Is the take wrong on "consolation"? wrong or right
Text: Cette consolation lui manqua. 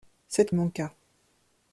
wrong